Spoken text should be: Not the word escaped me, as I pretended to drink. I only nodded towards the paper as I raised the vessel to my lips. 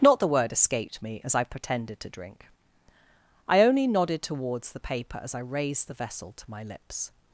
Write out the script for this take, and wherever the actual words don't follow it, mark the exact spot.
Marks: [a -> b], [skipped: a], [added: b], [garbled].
Not the word escaped me, as I pretended to drink. I only nodded towards the paper as I raised the vessel to my lips.